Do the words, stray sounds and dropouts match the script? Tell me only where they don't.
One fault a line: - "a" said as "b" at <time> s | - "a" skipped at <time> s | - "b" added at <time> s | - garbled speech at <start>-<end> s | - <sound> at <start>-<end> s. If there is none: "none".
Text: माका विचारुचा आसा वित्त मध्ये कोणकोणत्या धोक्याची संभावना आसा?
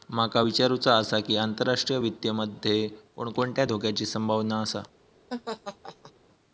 - "की आंतरराष्ट्रीय" added at 1.2 s
- laugh at 5.3-6.1 s